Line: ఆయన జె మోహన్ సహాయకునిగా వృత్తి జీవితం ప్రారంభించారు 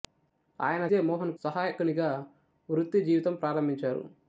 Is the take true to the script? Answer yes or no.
yes